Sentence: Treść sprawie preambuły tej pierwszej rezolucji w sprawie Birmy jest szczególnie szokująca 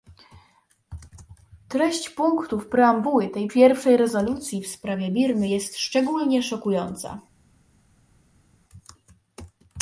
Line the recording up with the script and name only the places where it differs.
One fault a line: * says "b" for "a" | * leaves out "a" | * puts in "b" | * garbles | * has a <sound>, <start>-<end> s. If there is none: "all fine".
* says "punktów" for "sprawie"